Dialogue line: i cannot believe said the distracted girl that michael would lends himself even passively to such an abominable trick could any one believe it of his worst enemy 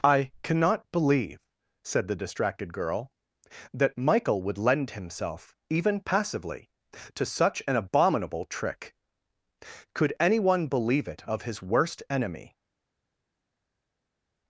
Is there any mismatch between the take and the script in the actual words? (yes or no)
yes